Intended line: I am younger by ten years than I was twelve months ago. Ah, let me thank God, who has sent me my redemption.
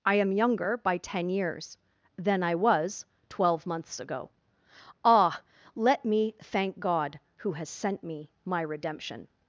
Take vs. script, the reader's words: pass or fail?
pass